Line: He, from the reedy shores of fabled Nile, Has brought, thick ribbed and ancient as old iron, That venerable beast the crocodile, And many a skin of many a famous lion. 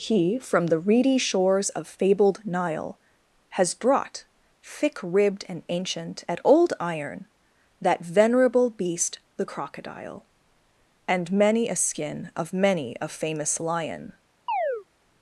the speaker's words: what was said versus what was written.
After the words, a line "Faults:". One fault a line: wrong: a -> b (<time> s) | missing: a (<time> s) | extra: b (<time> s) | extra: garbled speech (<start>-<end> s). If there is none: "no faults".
He, from the reedy shores of fabled Nile, Has brought, thick ribbed and ancient at old iron, That venerable beast the crocodile, And many a skin of many a famous lion.
Faults:
wrong: as -> at (6.3 s)